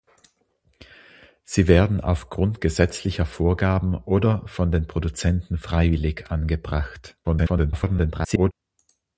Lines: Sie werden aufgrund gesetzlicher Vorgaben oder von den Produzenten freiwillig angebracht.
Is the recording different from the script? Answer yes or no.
yes